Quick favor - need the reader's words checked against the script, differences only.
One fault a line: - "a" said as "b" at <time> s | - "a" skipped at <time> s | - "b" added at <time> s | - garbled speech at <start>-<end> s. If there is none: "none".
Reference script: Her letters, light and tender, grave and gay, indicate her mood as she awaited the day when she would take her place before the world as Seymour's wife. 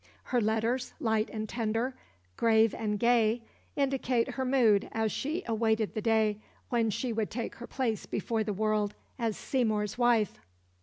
none